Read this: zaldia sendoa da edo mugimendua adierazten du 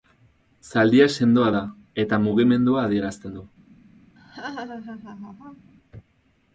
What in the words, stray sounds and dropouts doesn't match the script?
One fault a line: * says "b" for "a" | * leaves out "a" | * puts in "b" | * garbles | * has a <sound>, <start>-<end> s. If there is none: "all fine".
* says "eta" for "edo"
* has a laugh, 4.2-5.7 s